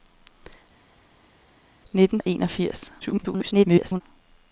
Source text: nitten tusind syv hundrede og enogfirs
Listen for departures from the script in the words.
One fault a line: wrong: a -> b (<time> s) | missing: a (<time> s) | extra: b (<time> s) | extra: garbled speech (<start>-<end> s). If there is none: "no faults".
missing: tusind syv hundrede (2.2 s)
extra: garbled speech (3.0-4.0 s)